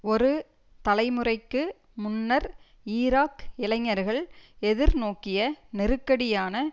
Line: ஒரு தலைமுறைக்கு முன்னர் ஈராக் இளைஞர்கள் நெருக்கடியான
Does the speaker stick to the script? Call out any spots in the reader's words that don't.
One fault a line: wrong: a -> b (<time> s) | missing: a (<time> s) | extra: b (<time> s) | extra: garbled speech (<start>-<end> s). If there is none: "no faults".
extra: எதிர்நோக்கிய (4.6 s)